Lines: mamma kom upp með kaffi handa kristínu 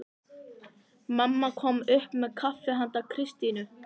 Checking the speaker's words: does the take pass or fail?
pass